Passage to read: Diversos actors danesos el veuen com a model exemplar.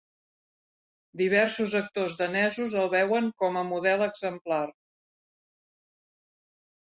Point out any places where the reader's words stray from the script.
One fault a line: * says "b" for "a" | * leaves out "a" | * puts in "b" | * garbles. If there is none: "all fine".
all fine